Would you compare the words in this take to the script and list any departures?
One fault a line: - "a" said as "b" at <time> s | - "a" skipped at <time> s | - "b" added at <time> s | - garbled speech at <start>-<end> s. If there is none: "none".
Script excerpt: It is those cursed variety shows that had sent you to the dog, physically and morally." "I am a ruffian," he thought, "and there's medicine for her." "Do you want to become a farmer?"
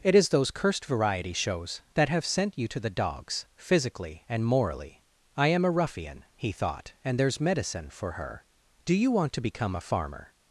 - "had" said as "have" at 2.1 s
- "dog" said as "dogs" at 2.9 s